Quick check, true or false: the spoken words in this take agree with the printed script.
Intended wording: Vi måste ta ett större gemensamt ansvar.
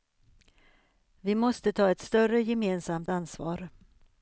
true